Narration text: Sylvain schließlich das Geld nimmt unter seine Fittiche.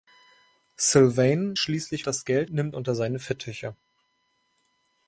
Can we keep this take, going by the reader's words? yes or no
yes